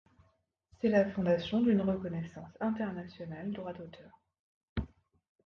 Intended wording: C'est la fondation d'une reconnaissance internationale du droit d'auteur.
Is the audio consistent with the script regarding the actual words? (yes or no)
no